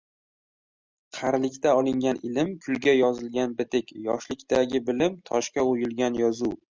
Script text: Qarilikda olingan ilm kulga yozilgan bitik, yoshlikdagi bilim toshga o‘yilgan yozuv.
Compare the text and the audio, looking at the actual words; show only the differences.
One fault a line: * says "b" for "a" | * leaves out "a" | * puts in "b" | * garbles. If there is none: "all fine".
all fine